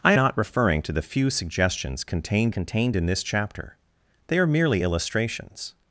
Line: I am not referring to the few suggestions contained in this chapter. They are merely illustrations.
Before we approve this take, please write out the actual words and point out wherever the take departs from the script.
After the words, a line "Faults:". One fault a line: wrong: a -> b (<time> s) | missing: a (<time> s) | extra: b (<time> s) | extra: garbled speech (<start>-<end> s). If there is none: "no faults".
I not referring to the few suggestions contained contained in this chapter. They are merely illustrations.
Faults:
missing: am (0.1 s)
extra: contained (2.5 s)